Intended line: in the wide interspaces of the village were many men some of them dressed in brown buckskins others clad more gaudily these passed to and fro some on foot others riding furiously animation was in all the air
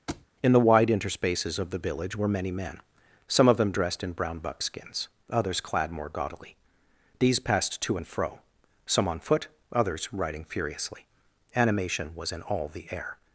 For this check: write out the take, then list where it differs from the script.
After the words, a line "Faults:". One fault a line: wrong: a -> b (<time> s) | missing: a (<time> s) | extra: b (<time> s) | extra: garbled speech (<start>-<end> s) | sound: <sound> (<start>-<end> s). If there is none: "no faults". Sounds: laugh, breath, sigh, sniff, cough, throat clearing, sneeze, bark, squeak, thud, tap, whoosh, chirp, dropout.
in the wide interspaces of the village were many men some of them dressed in brown buckskins others clad more gaudily these passed to and fro some on foot others riding furiously animation was in all the air
Faults:
sound: thud (0.1-0.3 s)